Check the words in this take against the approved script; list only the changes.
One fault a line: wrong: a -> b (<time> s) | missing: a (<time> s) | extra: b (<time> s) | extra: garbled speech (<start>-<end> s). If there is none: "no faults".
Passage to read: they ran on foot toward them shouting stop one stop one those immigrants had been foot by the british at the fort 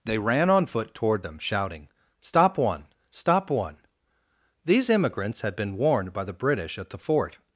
wrong: those -> these (4.6 s)
wrong: foot -> warned (5.8 s)